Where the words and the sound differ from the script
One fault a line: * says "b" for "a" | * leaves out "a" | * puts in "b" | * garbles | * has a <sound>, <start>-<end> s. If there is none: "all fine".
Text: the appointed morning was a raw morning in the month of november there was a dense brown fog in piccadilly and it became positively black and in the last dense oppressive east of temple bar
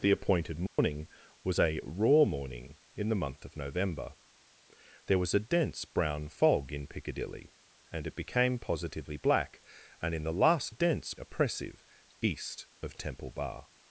* has a dropout, 0.7-0.8 s